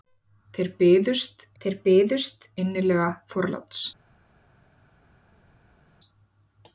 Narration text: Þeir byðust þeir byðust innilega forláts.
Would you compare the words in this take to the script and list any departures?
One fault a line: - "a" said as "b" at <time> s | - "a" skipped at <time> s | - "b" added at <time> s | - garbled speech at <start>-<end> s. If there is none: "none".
none